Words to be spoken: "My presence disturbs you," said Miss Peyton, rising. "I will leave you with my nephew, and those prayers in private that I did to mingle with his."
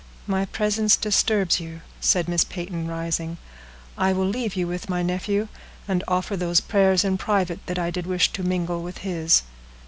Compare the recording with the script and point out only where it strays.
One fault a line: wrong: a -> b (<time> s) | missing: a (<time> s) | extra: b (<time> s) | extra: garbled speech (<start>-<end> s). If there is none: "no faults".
extra: offer (6.1 s)
extra: wish (8.0 s)